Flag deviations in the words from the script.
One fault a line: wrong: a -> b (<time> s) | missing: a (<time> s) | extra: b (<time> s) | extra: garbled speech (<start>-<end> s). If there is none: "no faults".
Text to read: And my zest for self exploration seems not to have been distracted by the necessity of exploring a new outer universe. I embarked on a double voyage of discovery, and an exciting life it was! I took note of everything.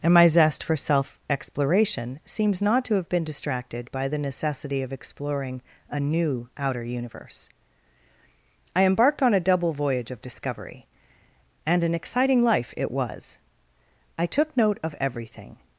no faults